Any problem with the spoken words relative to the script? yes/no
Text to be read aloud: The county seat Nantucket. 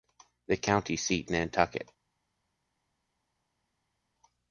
no